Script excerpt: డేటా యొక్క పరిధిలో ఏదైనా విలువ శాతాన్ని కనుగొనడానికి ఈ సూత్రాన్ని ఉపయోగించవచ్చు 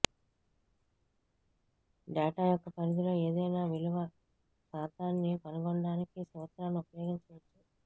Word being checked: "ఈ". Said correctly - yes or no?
yes